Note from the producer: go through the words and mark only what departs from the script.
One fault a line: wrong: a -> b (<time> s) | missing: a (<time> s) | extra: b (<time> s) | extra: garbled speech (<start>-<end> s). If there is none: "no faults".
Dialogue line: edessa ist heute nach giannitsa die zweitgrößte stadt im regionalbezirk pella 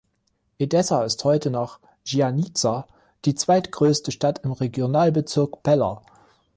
no faults